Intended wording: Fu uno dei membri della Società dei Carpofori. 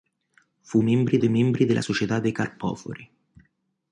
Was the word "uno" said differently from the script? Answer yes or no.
yes